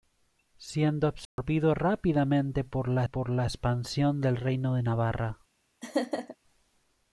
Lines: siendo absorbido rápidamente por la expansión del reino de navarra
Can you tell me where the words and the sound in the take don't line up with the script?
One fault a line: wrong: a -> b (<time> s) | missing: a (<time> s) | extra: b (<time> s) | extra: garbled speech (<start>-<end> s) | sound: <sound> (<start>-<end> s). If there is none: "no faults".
sound: dropout (1.3-1.4 s)
extra: por la (3.0 s)
sound: laugh (5.8-6.4 s)